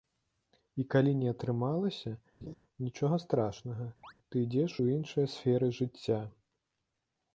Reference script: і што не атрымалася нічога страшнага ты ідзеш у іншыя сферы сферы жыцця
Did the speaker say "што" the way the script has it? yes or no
no